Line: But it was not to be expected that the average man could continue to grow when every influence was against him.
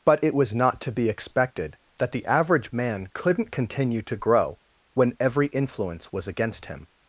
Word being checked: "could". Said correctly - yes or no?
no